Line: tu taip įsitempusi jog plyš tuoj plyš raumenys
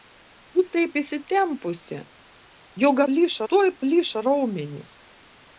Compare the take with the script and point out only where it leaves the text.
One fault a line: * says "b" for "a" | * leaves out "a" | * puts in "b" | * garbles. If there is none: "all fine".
all fine